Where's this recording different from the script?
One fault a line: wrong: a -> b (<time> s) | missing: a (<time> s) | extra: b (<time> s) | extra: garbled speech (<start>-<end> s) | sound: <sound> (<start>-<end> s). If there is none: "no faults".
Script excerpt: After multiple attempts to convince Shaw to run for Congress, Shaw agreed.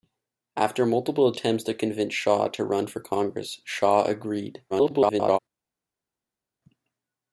extra: garbled speech (4.7-5.4 s)